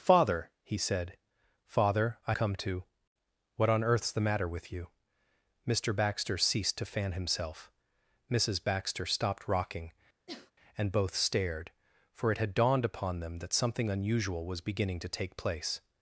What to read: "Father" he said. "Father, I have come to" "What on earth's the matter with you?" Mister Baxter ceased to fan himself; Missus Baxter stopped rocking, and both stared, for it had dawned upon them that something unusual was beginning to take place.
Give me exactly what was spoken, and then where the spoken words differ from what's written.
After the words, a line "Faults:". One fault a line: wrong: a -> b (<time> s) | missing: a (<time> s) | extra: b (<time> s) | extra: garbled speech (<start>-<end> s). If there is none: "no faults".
"Father" he said. "Father, I come to" "What on earth's the matter with you?" Mister Baxter ceased to fan himself; Missus Baxter stopped rocking, and both stared, for it had dawned upon them that something unusual was beginning to take place.
Faults:
missing: have (2.3 s)